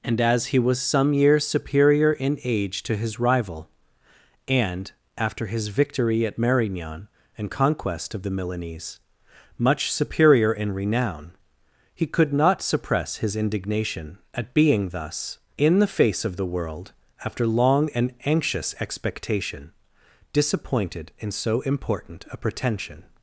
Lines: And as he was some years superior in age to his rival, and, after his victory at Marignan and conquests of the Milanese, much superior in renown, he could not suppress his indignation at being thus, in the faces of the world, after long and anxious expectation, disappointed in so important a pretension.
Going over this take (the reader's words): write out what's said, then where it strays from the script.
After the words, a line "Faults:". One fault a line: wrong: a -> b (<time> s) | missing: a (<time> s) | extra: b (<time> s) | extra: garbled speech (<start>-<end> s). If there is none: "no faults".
And as he was some years superior in age to his rival, and, after his victory at Marignan and conquest of the Milanese, much superior in renown, he could not suppress his indignation at being thus, in the face of the world, after long and anxious expectation, disappointed in so important a pretension.
Faults:
wrong: conquests -> conquest (7.5 s)
wrong: faces -> face (15.9 s)